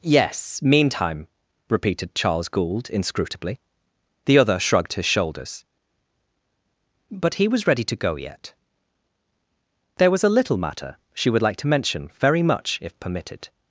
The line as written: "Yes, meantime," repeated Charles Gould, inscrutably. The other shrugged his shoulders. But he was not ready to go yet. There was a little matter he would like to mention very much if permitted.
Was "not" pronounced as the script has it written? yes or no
no